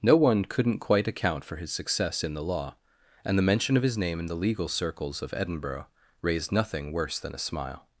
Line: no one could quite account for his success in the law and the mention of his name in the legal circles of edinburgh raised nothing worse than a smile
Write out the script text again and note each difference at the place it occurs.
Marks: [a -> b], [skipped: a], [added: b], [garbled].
no one [could -> couldn't] quite account for his success in the law and the mention of his name in the legal circles of edinburgh raised nothing worse than a smile